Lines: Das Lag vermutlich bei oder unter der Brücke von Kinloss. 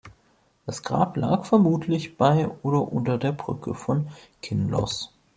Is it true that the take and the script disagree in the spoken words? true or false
true